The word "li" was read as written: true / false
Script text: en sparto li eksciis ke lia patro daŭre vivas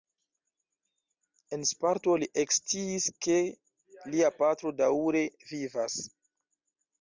true